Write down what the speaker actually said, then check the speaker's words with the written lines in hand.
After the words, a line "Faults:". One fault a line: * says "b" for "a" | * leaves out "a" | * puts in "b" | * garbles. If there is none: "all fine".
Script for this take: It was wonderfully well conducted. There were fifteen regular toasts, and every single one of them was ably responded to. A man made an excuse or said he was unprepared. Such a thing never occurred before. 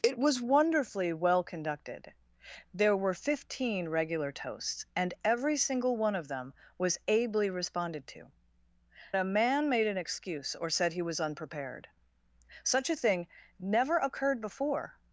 It was wonderfully well conducted. There were fifteen regular toasts, and every single one of them was ably responded to. A man made an excuse or said he was unprepared. Such a thing never occurred before.
Faults:
all fine